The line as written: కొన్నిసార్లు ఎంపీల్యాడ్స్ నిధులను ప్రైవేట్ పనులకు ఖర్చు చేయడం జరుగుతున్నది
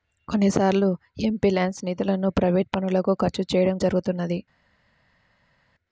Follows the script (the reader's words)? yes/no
yes